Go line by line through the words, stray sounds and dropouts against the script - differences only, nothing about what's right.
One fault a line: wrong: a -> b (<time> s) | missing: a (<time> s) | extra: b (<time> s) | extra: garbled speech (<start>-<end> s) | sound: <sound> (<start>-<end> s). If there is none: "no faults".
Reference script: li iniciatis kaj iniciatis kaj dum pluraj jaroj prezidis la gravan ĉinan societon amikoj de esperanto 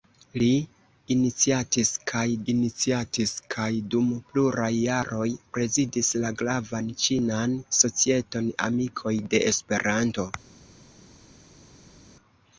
no faults